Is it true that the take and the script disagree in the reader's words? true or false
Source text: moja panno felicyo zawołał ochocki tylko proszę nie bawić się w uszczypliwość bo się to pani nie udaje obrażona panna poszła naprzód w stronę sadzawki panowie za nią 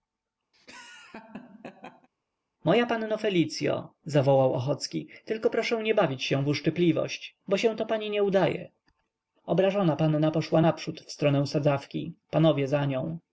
false